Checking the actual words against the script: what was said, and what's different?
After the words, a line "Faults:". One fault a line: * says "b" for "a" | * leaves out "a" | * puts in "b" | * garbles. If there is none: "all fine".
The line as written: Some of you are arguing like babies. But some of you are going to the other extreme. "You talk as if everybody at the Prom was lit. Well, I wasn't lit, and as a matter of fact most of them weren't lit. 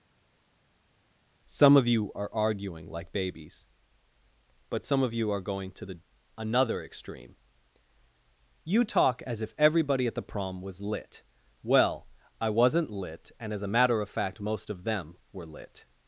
Some of you are arguing like babies. But some of you are going to the another extreme. "You talk as if everybody at the Prom was lit. Well, I wasn't lit, and as a matter of fact most of them were lit.
Faults:
* says "another" for "other"
* says "were" for "weren't"